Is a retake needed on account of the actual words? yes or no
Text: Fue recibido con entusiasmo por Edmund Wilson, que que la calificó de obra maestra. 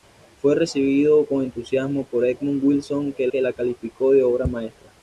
no